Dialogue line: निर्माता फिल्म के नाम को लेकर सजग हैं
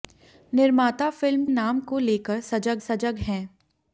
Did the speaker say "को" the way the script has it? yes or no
yes